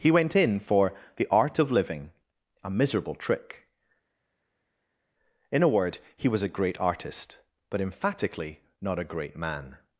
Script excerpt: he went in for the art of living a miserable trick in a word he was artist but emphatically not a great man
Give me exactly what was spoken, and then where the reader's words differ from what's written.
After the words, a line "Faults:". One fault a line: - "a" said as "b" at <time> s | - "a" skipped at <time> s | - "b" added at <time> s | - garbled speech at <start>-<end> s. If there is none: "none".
he went in for the art of living a miserable trick in a word he was a great artist but emphatically not a great man
Faults:
- "a great" added at 6.4 s